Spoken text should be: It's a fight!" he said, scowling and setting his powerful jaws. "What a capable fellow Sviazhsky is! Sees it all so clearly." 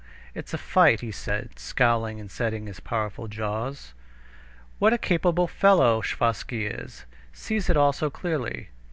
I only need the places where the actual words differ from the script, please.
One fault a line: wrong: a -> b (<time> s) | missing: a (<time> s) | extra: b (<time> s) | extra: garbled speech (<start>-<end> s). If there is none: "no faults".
no faults